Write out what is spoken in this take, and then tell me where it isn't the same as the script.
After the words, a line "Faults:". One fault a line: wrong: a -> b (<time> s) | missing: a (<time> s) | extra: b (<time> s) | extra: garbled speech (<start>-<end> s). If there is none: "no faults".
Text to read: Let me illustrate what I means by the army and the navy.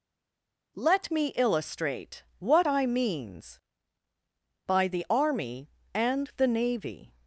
Let me illustrate what I means by the army and the navy.
Faults:
no faults